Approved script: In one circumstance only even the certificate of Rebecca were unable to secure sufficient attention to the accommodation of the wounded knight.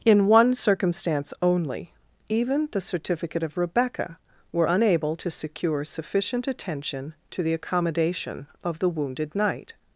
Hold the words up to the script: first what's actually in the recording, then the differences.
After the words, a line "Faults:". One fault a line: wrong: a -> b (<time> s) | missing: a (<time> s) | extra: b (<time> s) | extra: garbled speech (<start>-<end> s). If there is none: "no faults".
In one circumstance only even the certificate of Rebecca were unable to secure sufficient attention to the accommodation of the wounded knight.
Faults:
no faults